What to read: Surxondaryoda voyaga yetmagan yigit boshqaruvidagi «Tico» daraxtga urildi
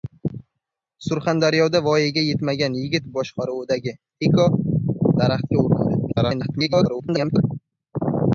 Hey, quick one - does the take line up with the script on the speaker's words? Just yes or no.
no